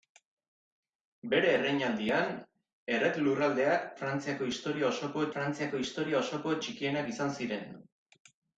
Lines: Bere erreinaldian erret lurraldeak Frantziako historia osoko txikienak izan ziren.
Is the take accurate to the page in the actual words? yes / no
no